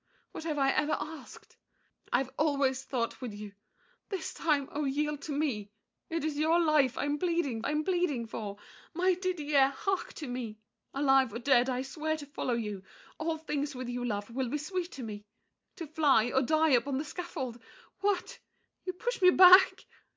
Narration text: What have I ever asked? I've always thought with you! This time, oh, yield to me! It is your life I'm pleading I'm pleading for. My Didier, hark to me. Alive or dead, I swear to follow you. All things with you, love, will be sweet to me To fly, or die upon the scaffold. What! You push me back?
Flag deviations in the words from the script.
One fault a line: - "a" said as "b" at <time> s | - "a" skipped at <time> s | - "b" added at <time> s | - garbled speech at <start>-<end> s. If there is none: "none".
none